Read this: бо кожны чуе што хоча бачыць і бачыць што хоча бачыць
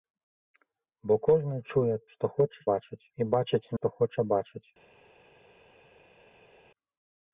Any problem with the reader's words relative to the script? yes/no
no